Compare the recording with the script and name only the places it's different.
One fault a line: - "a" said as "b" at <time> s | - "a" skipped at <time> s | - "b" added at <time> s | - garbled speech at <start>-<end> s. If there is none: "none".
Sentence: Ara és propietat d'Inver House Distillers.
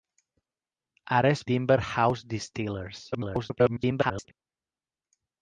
- "propietat" skipped at 1.4 s
- garbled speech at 3.1-4.3 s